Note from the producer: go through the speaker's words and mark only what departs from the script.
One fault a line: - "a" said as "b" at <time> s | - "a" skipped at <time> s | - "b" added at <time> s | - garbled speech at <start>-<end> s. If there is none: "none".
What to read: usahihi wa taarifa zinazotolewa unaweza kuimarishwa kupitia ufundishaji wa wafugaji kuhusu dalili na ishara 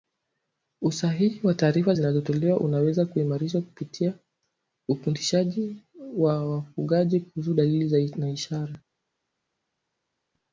none